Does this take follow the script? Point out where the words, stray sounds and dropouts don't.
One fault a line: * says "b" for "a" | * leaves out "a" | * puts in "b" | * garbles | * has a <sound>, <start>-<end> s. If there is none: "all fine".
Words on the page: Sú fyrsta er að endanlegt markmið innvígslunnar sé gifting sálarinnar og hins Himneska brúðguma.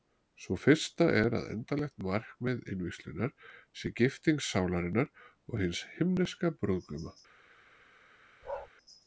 * has a bark, 8.4-8.7 s